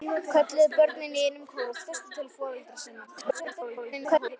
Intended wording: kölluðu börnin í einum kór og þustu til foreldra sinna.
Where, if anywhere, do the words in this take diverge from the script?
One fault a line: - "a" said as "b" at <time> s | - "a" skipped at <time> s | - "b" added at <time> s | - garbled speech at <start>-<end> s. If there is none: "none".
- garbled speech at 3.1-4.4 s